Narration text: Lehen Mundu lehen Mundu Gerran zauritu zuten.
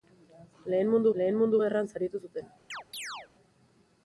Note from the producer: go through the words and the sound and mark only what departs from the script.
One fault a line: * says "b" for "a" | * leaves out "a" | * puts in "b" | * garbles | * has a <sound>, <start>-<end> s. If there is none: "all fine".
* has a chirp, 2.7-3.3 s